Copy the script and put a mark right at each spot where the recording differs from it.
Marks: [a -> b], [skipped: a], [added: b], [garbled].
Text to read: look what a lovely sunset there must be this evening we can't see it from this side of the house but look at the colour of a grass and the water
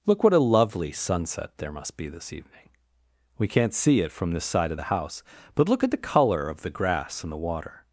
look what a lovely sunset there must be this evening we can't see it from this side of the house but look at the colour of [a -> the] grass and the water